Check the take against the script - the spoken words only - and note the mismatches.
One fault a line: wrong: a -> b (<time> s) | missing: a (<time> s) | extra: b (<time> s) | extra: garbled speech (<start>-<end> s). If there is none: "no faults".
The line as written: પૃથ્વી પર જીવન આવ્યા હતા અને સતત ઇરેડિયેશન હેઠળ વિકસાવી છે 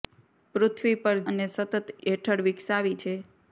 missing: જીવન આવ્યા હતા (1.2 s)
missing: ઇરેડિયેશન (1.8 s)